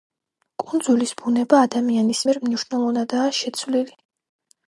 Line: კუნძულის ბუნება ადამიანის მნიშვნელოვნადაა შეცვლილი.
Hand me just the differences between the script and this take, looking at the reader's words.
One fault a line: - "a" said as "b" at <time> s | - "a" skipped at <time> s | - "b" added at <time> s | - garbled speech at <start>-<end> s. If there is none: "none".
- "მიერ" added at 2.3 s